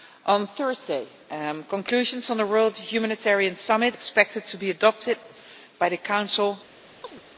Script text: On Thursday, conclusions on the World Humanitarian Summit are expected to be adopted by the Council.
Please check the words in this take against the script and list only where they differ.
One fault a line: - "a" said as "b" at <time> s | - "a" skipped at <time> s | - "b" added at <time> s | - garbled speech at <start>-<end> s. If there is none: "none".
- "are" skipped at 4.0 s